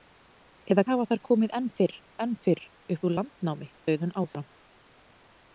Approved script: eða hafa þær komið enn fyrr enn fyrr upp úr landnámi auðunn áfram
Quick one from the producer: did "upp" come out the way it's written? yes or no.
yes